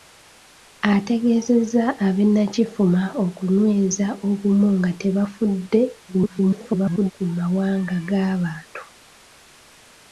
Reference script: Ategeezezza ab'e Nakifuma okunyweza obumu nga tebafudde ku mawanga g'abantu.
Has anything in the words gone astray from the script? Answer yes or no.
yes